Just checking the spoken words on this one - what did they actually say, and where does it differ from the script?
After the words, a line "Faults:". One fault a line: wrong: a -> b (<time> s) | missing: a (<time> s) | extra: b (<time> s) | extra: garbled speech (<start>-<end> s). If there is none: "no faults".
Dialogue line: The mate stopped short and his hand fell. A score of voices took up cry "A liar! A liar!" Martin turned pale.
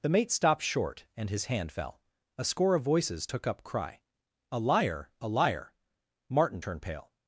The mate stopped short and his hand fell. A score of voices took up cry "A liar! A liar!" Martin turned pale.
Faults:
no faults